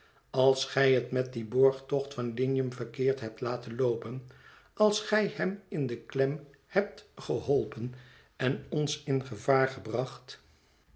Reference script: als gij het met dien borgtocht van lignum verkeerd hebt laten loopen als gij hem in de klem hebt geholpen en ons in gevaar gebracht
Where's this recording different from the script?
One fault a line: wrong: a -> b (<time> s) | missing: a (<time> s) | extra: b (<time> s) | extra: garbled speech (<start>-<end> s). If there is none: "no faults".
no faults